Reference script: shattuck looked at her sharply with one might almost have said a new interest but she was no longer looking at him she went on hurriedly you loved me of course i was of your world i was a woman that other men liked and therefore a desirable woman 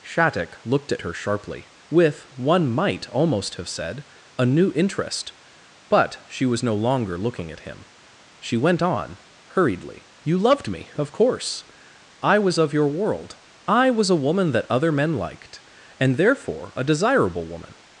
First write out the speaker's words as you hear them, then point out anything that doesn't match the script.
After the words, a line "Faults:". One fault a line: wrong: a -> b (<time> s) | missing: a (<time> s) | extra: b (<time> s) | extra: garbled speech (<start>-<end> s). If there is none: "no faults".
shattuck looked at her sharply with one might almost have said a new interest but she was no longer looking at him she went on hurriedly you loved me of course i was of your world i was a woman that other men liked and therefore a desirable woman
Faults:
no faults